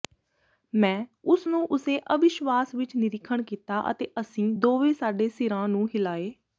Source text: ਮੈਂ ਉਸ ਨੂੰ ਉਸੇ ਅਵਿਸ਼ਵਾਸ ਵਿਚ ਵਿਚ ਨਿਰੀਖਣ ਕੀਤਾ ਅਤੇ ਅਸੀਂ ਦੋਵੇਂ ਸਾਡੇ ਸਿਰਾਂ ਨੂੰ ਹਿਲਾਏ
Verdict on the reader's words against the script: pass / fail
fail